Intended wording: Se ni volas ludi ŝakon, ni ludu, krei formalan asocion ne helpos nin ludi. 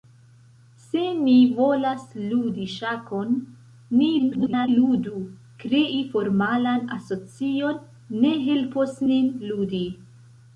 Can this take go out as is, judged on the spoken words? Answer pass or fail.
fail